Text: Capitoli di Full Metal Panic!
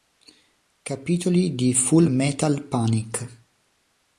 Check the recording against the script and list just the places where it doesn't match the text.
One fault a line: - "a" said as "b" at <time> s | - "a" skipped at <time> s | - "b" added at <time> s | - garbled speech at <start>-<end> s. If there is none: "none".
none